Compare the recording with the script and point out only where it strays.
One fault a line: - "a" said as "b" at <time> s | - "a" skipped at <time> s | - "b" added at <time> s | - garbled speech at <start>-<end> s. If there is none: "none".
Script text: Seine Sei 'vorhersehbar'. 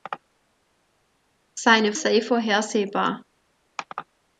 none